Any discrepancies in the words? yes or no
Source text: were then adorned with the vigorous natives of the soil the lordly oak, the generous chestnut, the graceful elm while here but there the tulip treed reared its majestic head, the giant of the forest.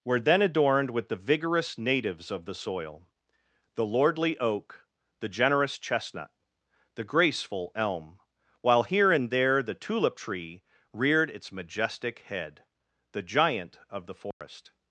yes